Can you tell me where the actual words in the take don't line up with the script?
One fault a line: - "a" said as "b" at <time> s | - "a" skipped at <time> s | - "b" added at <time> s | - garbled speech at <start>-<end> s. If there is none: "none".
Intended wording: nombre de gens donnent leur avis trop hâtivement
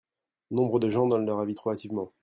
none